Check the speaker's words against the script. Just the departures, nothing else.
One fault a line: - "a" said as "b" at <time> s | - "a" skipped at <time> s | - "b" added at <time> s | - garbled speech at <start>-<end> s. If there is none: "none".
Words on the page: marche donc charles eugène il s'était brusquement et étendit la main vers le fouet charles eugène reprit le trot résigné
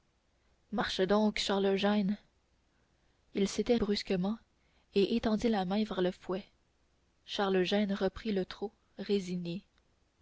none